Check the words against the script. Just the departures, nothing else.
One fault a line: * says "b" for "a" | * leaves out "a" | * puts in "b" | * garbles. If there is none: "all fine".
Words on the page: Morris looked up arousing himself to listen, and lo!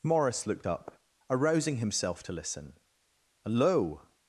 * says "hello" for "and lo"